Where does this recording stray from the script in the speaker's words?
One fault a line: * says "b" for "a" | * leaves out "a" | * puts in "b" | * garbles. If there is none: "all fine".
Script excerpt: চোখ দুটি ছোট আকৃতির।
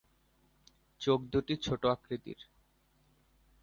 all fine